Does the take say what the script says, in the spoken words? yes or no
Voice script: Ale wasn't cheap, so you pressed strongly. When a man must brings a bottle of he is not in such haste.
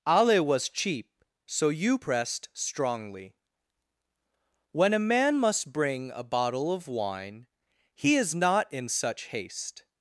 no